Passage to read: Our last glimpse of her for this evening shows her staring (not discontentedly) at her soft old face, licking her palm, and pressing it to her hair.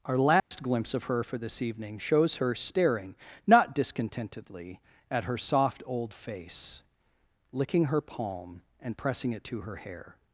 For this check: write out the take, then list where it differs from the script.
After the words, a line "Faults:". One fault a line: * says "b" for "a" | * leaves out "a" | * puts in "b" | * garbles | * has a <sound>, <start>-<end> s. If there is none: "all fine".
Our last glimpse of her for this evening shows her staring (not discontentedly) at her soft old face, licking her palm, and pressing it to her hair.
Faults:
* has a dropout, 0.4-0.5 s